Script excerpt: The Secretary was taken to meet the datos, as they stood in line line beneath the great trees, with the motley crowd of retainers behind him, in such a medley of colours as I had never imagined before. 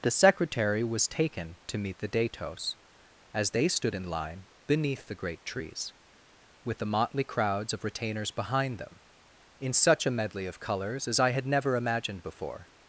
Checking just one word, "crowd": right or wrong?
wrong